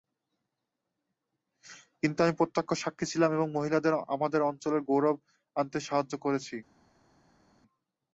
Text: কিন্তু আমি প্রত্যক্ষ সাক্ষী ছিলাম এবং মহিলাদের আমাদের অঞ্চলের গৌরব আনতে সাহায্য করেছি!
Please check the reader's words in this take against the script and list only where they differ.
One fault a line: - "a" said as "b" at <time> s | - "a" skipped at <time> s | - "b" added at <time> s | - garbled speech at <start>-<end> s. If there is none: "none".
none